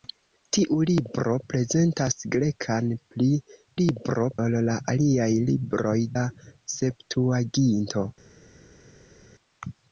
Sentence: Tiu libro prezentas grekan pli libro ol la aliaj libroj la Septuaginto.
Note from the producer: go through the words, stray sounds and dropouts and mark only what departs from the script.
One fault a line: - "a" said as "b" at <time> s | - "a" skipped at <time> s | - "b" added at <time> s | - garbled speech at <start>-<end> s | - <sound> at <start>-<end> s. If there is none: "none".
none